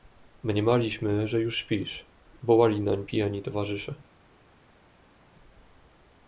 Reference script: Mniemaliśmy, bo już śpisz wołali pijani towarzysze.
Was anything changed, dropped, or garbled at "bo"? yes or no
yes